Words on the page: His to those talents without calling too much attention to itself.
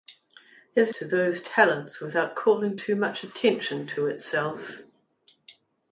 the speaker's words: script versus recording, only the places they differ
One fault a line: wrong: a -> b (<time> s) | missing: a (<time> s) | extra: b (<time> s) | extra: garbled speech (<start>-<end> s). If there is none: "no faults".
no faults